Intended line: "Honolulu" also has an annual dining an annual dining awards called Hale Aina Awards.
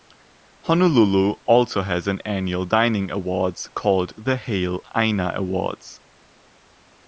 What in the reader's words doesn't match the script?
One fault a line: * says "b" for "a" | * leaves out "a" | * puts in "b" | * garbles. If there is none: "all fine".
* leaves out "an annual dining"
* puts in "the"